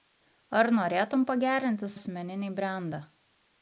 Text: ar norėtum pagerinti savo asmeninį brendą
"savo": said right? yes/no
no